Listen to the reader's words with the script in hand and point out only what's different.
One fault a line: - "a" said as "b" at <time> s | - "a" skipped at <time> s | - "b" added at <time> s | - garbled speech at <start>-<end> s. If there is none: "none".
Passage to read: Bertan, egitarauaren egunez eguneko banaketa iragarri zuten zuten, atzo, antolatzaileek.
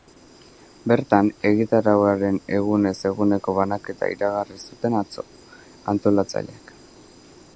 - "zuten" skipped at 5.0 s